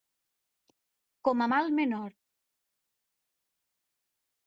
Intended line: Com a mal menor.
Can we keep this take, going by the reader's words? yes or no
yes